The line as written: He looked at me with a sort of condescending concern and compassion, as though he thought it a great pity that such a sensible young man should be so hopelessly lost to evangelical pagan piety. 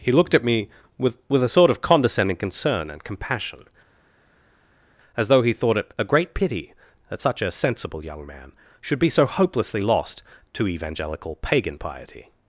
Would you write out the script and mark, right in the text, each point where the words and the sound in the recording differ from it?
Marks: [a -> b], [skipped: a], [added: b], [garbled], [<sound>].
He looked at me with [added: with] a sort of condescending concern and compassion, as though he thought it a great pity that such a sensible young man should be so hopelessly lost to evangelical pagan piety.